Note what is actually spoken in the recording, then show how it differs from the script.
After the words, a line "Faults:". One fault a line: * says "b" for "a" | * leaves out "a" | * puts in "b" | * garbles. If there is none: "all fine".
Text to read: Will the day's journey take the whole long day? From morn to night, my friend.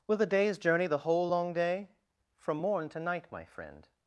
Will the day's journey the whole long day? From morn to night, my friend.
Faults:
* leaves out "take"